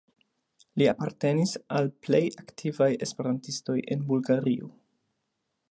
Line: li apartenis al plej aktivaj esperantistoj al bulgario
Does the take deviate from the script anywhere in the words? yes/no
yes